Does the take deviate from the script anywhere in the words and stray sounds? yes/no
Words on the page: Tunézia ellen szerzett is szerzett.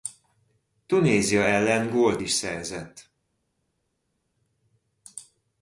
yes